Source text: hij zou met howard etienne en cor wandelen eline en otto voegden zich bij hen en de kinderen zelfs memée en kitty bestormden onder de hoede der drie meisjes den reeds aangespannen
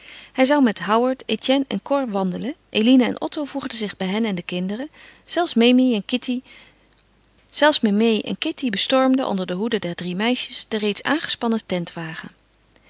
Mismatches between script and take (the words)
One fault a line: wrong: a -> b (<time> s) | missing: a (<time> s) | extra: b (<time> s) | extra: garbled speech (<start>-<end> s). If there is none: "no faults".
no faults